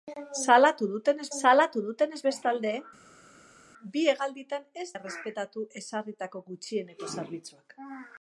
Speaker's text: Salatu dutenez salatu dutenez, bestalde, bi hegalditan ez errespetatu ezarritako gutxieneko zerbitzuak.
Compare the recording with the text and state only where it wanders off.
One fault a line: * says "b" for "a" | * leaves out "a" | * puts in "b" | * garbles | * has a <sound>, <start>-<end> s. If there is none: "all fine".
all fine